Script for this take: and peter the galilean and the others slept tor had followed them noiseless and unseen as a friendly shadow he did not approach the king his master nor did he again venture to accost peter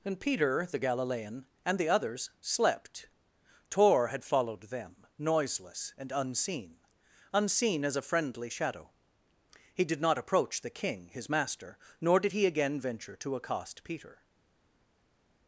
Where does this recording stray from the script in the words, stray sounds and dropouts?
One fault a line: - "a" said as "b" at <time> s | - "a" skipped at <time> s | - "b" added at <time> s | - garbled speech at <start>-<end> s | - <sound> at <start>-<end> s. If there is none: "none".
- "unseen" added at 7.3 s